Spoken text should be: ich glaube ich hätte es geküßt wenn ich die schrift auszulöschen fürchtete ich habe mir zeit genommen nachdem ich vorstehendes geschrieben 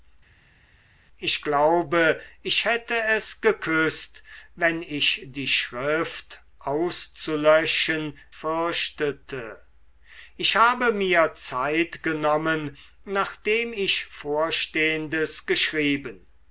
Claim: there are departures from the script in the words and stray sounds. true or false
false